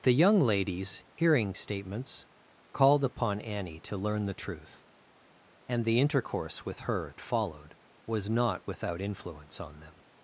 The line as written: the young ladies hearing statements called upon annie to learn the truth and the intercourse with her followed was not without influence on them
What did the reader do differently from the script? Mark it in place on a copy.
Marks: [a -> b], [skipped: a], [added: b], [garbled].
the young ladies hearing statements called upon annie to learn the truth and the intercourse with her followed was not without influence on them